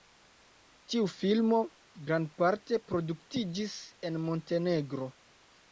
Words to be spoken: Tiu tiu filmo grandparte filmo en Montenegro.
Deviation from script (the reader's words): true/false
true